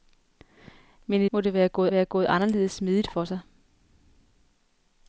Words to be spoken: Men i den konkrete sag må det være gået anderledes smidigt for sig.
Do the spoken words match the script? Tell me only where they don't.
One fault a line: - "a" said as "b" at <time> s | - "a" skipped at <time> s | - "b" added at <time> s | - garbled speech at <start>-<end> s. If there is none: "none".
- "den konkrete sag må det" said as "må det være gået" at 1.3 s